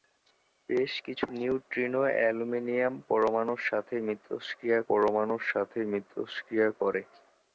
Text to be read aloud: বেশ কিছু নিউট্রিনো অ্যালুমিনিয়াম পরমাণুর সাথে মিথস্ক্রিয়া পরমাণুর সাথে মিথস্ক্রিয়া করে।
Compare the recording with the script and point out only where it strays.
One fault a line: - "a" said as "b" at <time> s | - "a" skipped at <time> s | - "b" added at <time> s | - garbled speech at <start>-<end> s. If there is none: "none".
none